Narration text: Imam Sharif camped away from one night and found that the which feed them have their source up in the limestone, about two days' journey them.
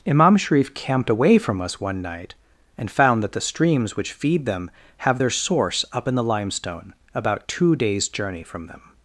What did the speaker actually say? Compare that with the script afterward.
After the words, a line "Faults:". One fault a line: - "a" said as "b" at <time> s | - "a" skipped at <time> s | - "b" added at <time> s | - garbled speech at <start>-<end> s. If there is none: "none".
Imam Sharif camped away from us one night and found that the streams which feed them have their source up in the limestone, about two days' journey from them.
Faults:
- "us" added at 1.6 s
- "streams" added at 3.4 s
- "from" added at 8.4 s